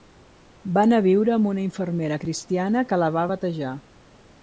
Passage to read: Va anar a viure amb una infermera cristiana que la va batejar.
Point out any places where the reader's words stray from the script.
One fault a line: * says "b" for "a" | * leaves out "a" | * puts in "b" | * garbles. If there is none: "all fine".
all fine